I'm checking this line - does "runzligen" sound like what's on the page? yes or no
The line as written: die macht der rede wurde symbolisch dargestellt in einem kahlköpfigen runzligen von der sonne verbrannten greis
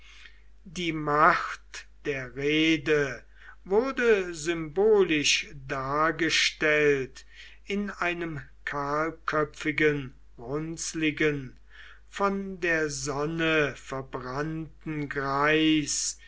yes